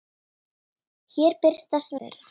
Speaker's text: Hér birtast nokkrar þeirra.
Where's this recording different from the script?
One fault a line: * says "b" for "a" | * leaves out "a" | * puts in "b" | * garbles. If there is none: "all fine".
* leaves out "nokkrar"